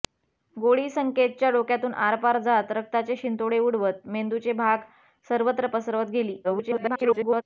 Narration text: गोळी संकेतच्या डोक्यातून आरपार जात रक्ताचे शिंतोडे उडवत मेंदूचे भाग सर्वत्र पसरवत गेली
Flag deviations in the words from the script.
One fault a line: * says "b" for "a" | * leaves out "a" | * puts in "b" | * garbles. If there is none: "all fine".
* garbles